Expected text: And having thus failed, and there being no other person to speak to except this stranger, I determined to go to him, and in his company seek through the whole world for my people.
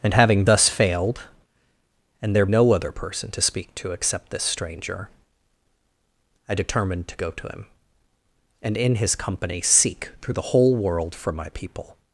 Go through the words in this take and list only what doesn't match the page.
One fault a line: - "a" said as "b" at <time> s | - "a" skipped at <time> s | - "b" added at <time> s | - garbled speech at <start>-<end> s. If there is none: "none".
- "being" skipped at 2.5 s